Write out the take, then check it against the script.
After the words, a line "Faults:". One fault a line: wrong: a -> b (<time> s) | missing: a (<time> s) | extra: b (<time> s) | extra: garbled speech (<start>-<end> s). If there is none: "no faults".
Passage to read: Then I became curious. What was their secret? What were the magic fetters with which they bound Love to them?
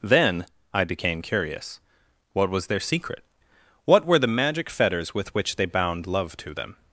Then I became curious. What was their secret? What were the magic fetters with which they bound Love to them?
Faults:
no faults